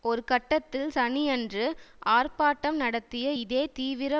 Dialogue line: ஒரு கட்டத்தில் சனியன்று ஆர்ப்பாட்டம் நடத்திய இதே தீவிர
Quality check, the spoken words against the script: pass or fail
pass